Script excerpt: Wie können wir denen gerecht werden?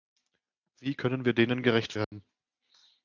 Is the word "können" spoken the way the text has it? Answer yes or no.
yes